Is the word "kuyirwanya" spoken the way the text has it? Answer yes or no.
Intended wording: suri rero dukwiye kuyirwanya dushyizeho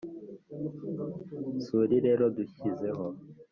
no